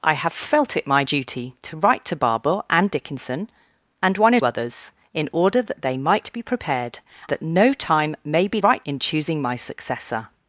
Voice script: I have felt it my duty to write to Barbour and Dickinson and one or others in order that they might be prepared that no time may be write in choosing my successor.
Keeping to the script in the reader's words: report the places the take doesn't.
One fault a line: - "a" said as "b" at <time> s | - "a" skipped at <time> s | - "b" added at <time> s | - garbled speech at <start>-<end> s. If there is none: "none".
none